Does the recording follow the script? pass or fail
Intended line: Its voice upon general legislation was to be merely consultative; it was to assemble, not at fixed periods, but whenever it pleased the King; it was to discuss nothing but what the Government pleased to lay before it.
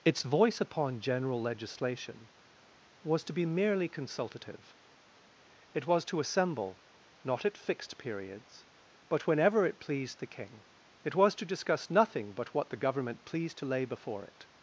pass